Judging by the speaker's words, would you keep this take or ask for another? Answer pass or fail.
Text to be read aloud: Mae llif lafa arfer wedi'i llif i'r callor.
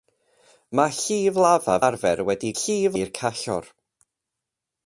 pass